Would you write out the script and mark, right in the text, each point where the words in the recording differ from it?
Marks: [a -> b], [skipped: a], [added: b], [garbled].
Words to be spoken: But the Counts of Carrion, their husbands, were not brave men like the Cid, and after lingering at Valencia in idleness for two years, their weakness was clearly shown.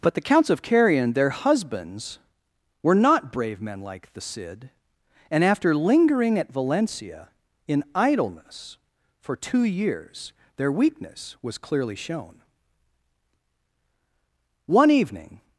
But the Counts of Carrion, their husbands, were not brave men like the Cid, and after lingering at Valencia in idleness for two years, their weakness was clearly shown. [added: One evening]